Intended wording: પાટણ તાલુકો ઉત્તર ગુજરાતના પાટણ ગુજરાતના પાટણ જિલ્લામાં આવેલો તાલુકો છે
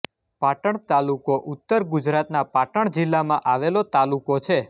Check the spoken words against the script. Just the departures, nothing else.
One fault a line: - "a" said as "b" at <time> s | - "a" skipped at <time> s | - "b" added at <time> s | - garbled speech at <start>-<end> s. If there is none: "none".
- "ગુજરાતના પાટણ" skipped at 2.9 s